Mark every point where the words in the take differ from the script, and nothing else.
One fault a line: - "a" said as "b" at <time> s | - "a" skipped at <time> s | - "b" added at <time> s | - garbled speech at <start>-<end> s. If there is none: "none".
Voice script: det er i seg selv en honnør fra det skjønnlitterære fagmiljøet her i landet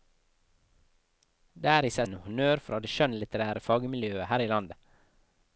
- "selv" skipped at 2.1 s